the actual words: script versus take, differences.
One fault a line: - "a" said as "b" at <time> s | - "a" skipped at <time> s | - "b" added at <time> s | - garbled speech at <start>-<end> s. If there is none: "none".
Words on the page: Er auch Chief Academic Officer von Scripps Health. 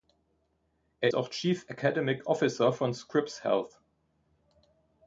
none